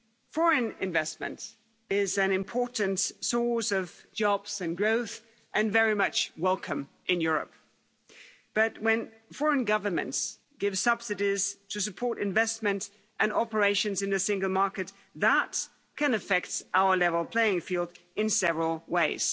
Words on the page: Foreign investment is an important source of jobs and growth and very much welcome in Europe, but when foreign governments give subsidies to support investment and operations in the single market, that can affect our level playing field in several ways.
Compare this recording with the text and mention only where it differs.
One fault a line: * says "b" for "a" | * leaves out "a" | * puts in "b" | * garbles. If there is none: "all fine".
all fine